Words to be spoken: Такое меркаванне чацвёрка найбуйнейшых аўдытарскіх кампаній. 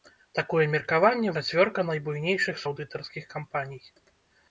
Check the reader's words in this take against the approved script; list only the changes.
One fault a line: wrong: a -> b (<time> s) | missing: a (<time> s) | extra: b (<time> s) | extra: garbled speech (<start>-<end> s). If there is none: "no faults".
no faults